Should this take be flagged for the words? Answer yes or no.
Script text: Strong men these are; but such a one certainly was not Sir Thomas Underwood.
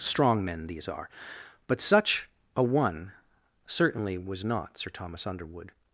no